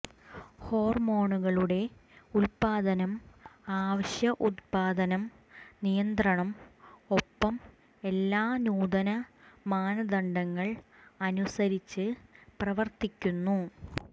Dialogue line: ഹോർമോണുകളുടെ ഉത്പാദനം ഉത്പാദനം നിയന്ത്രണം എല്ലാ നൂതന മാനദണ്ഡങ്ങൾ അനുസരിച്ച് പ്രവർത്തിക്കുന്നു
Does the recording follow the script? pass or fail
fail